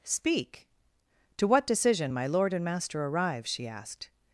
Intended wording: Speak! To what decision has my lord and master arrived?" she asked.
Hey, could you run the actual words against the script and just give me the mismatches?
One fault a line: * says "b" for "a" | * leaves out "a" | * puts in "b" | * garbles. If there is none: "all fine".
* leaves out "has"
* says "arrive" for "arrived"